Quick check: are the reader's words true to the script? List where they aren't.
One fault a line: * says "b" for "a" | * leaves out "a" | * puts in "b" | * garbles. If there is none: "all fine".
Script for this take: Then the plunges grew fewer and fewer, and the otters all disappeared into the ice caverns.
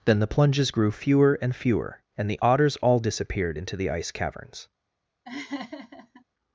all fine